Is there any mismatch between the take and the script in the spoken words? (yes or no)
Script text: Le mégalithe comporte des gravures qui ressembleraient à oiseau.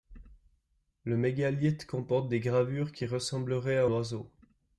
no